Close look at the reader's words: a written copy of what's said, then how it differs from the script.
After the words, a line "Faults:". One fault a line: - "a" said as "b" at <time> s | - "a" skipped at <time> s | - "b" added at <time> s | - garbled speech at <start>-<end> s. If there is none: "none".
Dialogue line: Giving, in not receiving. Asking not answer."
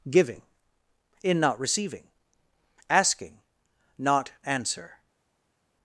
Giving, in not receiving. Asking not answer."
Faults:
none